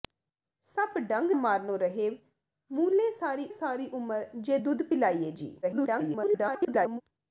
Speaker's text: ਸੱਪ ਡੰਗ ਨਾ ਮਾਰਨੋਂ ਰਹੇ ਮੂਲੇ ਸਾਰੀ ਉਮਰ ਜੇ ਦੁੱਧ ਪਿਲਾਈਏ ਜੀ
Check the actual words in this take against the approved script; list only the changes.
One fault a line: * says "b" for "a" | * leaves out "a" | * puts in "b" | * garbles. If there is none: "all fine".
* leaves out "ਨਾ"
* puts in "ਸਾਰੀ"
* garbles